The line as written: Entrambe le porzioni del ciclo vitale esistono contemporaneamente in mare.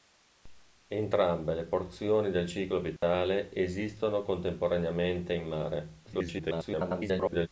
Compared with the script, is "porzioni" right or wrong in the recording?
right